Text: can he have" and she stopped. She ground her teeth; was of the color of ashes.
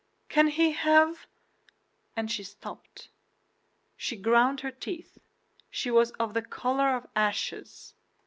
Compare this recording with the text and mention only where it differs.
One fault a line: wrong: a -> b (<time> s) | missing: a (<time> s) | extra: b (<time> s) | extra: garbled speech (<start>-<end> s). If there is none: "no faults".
extra: she (5.7 s)